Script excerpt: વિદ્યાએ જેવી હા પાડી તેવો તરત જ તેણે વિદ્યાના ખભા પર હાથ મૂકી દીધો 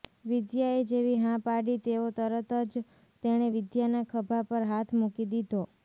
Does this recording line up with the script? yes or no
yes